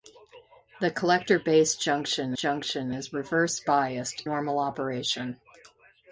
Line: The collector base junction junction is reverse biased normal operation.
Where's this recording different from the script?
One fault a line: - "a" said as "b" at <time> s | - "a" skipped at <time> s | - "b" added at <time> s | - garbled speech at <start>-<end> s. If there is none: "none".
none